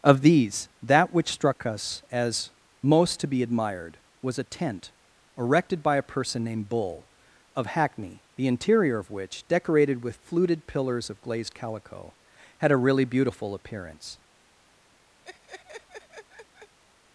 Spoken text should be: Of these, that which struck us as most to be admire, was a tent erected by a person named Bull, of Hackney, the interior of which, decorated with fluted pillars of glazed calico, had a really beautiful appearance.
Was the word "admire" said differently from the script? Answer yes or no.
yes